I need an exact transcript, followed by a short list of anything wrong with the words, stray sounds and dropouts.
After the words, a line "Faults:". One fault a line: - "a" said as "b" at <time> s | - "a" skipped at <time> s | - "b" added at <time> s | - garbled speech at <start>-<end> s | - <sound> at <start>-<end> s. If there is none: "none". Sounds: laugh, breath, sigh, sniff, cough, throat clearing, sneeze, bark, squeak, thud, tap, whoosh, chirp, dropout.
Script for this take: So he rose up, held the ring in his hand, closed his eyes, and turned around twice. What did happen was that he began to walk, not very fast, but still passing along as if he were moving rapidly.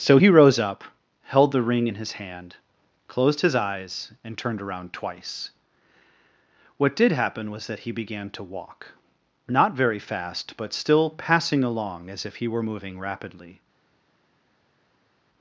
So he rose up, held the ring in his hand, closed his eyes, and turned around twice. What did happen was that he began to walk, not very fast, but still passing along as if he were moving rapidly.
Faults:
none